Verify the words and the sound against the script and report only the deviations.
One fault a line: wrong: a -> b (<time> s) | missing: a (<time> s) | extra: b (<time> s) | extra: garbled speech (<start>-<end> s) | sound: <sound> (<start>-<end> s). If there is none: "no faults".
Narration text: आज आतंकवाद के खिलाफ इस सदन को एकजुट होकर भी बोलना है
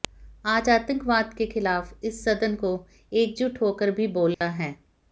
sound: dropout (4.3-4.4 s)